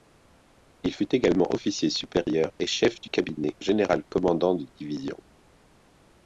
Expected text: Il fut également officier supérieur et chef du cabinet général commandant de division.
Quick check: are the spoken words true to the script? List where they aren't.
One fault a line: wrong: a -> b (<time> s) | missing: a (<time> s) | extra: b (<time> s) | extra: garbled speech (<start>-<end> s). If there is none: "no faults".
no faults